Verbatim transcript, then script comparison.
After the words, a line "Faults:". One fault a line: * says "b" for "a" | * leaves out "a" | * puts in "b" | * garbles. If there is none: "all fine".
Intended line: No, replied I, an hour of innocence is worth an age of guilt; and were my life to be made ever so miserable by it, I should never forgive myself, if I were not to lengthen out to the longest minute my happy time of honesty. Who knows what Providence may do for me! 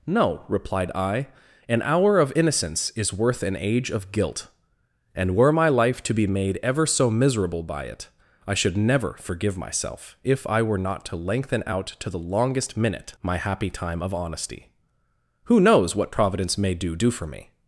No, replied I, an hour of innocence is worth an age of guilt; and were my life to be made ever so miserable by it, I should never forgive myself, if I were not to lengthen out to the longest minute my happy time of honesty. Who knows what Providence may do do for me!
Faults:
* puts in "do"